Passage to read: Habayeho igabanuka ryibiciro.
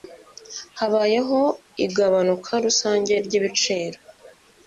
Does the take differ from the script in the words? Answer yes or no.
yes